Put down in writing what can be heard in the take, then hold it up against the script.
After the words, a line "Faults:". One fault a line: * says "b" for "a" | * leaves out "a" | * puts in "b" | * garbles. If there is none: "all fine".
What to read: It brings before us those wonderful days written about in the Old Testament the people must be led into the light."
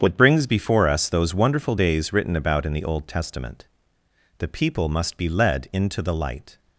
What brings before us those wonderful days written about in the Old Testament the people must be led into the light."
Faults:
* says "What" for "It"